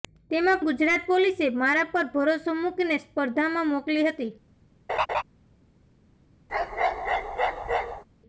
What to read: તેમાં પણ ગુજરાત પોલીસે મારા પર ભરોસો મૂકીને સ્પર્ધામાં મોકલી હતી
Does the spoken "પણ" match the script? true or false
false